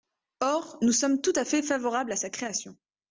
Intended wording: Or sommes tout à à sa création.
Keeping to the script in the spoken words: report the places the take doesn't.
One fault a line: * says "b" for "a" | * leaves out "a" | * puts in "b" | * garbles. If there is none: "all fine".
* puts in "nous"
* puts in "fait favorables"